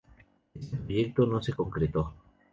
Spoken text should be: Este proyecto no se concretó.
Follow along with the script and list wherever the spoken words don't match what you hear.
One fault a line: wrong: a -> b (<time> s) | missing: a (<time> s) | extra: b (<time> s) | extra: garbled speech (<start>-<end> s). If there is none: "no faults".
no faults